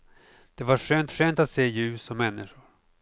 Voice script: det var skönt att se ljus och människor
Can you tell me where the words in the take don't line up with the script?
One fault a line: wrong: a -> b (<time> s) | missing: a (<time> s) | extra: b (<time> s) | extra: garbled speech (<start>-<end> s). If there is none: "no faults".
extra: skönt (1.1 s)